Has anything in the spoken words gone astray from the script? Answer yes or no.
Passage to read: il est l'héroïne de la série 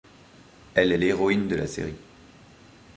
yes